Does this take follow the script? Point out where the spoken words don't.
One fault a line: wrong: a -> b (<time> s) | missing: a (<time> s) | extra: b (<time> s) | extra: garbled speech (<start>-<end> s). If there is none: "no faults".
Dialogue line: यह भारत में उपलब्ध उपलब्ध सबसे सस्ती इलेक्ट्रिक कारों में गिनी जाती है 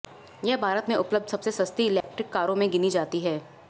missing: उपलब्ध (1.3 s)